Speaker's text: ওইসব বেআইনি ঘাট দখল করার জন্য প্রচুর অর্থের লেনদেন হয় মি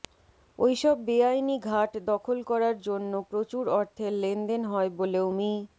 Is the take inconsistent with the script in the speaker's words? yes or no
yes